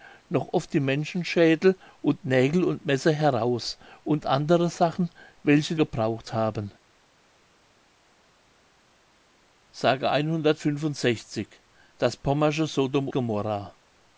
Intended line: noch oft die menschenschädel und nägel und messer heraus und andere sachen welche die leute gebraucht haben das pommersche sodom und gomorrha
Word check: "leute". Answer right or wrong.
wrong